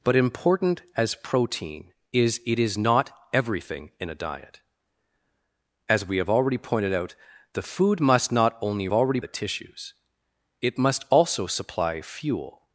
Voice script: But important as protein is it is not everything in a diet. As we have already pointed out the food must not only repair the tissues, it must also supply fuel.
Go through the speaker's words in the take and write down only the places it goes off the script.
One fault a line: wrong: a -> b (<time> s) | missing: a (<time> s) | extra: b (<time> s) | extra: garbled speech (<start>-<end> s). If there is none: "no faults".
wrong: repair -> already (8.9 s)